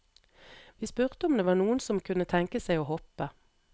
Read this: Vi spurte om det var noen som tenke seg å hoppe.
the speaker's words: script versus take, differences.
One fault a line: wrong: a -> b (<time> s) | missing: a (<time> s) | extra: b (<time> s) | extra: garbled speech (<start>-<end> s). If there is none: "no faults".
extra: kunne (2.1 s)